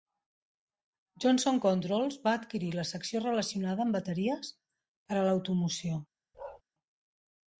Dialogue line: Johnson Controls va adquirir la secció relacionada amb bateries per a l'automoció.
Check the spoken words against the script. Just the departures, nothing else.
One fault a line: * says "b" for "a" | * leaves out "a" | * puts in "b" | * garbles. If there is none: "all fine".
all fine